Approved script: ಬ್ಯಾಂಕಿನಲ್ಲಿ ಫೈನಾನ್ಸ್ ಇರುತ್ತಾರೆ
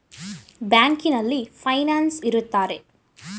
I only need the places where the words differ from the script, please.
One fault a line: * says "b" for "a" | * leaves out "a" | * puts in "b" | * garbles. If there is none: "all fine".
all fine